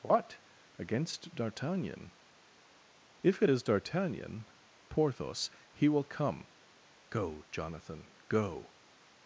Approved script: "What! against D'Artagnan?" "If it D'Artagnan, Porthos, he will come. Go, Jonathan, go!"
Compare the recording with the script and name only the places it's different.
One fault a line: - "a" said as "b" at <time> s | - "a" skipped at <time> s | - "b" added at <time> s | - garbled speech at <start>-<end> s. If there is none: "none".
- "is" added at 3.5 s